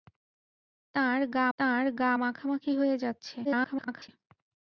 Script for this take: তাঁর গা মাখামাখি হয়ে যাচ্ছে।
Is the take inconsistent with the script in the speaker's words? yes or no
yes